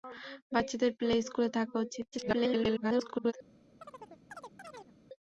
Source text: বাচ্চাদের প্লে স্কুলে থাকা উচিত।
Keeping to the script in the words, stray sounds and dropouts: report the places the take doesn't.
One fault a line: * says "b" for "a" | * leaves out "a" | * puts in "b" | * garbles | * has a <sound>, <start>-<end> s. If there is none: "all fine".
* garbles
* has a chirp, 3.8-4.9 s